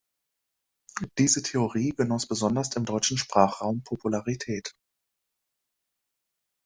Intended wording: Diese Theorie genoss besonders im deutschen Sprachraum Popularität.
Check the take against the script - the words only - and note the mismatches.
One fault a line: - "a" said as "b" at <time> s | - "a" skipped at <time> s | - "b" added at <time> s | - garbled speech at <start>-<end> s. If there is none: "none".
none